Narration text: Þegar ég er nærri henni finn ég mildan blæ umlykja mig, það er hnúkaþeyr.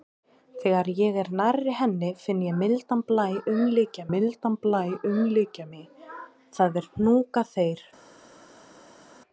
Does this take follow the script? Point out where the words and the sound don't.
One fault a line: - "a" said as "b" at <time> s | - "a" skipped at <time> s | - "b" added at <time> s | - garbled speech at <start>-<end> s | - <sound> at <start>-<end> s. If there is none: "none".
- "mildan blæ umlykja" added at 4.1 s